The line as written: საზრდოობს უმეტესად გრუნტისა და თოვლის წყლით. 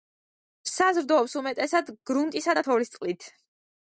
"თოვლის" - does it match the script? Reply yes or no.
yes